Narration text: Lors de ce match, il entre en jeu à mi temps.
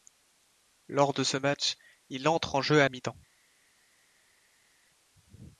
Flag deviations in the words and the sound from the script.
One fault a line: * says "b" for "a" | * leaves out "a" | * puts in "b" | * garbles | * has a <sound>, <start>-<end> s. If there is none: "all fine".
all fine